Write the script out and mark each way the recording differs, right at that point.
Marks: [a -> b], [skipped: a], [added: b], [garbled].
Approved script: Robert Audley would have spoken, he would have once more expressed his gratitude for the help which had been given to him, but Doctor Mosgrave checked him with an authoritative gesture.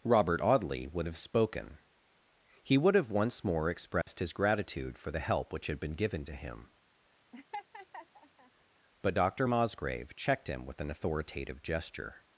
Robert Audley would have spoken, he would have once more expressed his gratitude for the help which had been given to him, but Doctor Mosgrave checked him with an authoritative gesture.